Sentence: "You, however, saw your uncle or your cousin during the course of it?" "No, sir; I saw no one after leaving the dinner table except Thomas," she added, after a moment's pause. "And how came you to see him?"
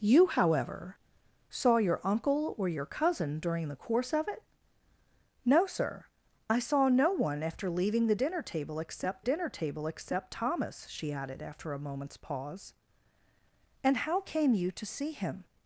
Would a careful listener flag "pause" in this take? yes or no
no